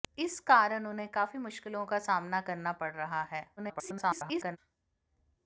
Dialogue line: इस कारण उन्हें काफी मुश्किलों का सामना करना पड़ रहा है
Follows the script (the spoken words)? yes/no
no